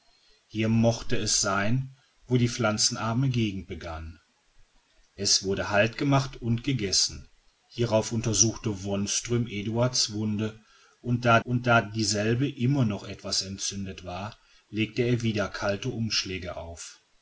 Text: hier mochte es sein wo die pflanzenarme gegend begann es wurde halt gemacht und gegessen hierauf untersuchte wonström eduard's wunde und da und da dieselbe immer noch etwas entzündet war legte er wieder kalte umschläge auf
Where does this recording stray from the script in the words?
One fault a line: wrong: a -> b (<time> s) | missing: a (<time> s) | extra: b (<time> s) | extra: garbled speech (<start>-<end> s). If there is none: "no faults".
no faults